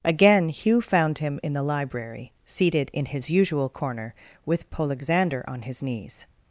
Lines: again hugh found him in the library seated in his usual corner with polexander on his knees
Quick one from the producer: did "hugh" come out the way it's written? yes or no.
yes